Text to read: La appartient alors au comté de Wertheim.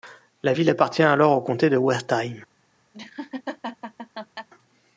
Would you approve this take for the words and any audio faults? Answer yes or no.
no